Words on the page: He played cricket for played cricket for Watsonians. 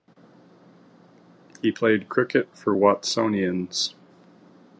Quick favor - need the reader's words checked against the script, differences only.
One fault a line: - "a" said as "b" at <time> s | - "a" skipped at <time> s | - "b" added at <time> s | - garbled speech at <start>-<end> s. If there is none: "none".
- "played cricket for" skipped at 2.7 s